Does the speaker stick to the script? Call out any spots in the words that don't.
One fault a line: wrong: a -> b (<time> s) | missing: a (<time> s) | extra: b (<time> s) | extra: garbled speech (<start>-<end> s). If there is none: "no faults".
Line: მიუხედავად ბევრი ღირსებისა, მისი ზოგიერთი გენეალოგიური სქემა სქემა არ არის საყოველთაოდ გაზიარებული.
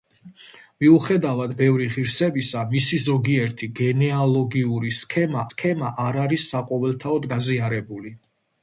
no faults